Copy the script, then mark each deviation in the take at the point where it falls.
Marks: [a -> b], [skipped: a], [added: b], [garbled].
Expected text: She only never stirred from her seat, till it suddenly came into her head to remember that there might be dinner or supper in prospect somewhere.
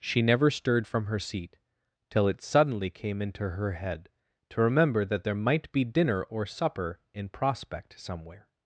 She [skipped: only] never stirred from her seat, till it suddenly came into her head to remember that there might be dinner or supper in prospect somewhere.